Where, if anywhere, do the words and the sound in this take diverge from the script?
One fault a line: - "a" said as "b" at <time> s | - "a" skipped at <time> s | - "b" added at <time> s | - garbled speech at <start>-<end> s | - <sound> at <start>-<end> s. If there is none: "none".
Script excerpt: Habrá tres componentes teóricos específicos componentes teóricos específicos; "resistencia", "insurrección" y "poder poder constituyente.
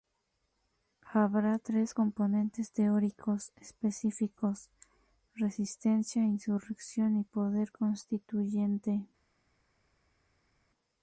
- "componentes teóricos específicos" skipped at 4.7 s
- "poder" skipped at 7.7 s